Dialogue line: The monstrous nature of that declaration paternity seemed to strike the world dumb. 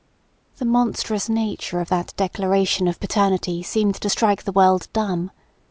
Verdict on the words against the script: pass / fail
fail